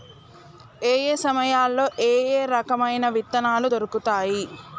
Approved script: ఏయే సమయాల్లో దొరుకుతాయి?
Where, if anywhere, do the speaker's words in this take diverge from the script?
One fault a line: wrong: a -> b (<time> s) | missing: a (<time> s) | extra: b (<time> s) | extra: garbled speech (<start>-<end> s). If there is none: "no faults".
extra: ఏయే రకమైన విత్తనాలు (2.0 s)